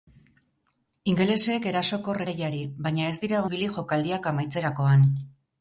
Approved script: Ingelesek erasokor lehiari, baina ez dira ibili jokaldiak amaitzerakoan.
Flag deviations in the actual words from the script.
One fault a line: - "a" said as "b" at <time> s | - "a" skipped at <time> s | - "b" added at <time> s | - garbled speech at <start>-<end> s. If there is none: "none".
none